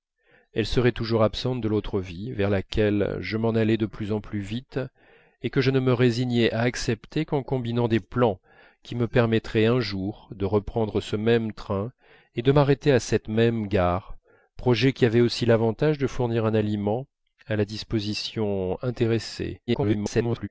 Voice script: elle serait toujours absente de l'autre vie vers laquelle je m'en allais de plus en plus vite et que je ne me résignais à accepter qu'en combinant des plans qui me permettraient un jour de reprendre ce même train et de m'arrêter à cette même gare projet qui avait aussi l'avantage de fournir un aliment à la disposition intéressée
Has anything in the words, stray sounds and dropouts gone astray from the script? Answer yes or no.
yes